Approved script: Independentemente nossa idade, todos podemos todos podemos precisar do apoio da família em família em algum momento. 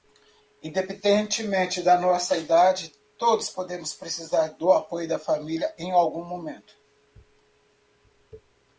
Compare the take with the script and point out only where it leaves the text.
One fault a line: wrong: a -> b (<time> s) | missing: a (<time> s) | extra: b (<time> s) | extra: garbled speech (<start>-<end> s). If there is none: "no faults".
extra: da (1.8 s)
missing: todos podemos (3.9 s)
missing: família em (5.9 s)